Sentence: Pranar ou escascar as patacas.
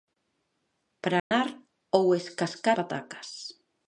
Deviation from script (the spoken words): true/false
true